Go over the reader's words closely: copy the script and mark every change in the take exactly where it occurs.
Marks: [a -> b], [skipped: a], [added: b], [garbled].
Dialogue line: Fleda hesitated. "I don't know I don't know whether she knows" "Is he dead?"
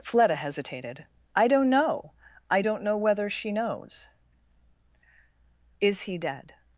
Fleda hesitated. "I don't know I don't know whether she knows" "Is he dead?"